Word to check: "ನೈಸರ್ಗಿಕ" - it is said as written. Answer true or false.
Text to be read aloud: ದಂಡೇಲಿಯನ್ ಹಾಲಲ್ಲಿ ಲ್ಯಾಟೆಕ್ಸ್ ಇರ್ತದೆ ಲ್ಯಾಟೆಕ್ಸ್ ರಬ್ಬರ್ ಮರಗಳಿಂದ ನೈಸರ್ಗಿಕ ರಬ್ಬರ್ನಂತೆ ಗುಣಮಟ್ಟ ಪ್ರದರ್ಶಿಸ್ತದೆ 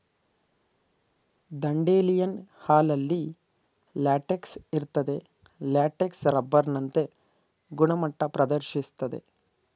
false